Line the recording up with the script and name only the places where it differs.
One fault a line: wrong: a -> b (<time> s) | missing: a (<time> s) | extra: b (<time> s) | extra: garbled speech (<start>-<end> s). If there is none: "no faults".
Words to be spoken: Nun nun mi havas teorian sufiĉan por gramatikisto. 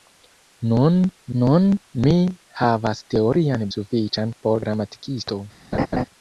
no faults